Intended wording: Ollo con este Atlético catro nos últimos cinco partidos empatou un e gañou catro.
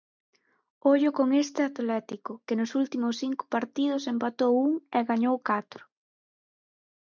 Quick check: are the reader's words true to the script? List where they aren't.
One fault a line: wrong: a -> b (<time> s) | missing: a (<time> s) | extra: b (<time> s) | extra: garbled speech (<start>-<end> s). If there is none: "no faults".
wrong: catro -> que (2.5 s)